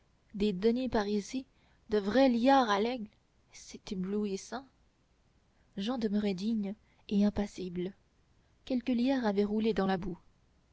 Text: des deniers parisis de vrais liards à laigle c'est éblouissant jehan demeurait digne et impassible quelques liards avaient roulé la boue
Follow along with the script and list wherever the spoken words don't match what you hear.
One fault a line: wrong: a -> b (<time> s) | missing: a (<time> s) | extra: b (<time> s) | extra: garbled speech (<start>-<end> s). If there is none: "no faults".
extra: dans (9.7 s)